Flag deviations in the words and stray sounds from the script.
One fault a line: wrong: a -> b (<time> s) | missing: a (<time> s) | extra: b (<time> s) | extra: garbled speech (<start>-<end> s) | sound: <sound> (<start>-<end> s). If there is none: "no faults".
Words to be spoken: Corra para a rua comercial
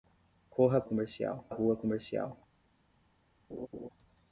wrong: para -> comercial (0.8 s)
sound: laugh (3.5-3.9 s)